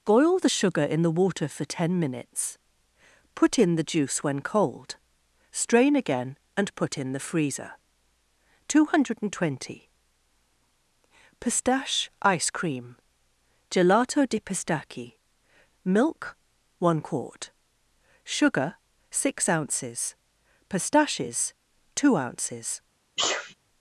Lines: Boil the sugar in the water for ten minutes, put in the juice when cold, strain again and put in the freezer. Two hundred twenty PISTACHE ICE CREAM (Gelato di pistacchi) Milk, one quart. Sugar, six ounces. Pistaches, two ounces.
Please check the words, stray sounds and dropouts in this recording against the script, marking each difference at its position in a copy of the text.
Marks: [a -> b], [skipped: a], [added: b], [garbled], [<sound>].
Boil the sugar in the water for ten minutes, put in the juice when cold, strain again and put in the freezer. Two hundred twenty PISTACHE ICE CREAM (Gelato di pistacchi) Milk, one quart. Sugar, six ounces. Pistaches, two ounces. [sneeze]